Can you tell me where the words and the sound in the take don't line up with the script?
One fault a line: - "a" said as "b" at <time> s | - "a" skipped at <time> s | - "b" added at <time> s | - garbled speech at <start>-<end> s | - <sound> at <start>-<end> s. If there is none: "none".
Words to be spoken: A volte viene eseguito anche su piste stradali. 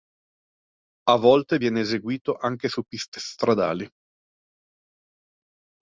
none